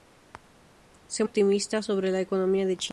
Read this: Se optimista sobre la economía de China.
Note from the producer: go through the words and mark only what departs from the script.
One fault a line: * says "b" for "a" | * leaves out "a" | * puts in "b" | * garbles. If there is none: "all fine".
all fine